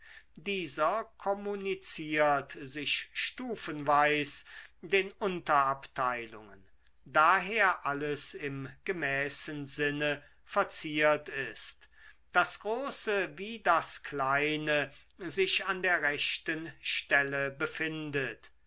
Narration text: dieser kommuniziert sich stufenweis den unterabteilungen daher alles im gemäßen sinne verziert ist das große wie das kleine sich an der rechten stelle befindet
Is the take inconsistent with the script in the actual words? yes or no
no